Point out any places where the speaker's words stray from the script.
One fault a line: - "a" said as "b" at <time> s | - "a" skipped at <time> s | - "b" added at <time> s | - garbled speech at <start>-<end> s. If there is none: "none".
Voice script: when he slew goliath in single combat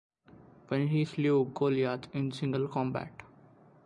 none